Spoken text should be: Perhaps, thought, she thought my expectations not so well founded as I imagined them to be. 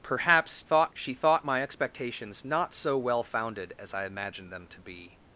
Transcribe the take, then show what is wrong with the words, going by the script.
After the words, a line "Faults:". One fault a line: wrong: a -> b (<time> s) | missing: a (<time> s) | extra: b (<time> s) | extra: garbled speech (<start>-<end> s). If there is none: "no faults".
Perhaps, thought, she thought my expectations not so well founded as I imagined them to be.
Faults:
no faults